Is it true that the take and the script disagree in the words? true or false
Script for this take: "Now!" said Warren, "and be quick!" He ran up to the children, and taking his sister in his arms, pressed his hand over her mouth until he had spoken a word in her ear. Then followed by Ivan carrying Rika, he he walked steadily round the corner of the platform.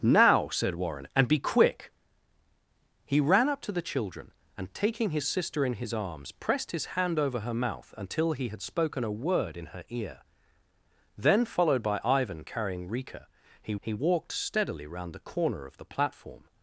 false